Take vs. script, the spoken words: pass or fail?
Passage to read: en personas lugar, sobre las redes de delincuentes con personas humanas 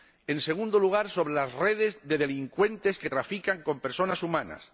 fail